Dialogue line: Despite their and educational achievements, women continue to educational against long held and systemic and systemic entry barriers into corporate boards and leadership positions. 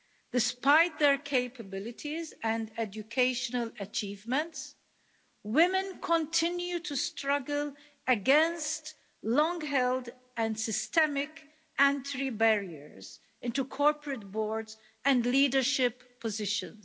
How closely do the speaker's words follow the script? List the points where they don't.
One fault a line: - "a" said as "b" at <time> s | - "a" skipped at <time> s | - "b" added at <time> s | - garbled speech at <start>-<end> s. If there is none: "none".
- "capabilities" added at 1.2 s
- "educational" said as "struggle" at 7.0 s
- "and systemic" skipped at 11.5 s